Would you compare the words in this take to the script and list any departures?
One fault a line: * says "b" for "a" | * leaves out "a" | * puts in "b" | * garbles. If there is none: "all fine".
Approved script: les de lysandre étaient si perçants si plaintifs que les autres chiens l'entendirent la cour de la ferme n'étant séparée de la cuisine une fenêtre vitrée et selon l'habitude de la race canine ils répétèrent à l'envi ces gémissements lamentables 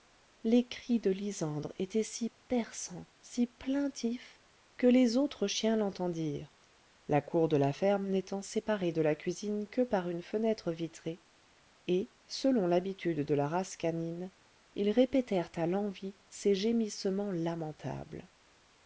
* puts in "cris"
* puts in "que par"